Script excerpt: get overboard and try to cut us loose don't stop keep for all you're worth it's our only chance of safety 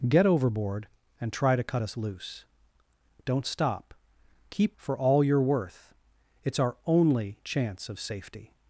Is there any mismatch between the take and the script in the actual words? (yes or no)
no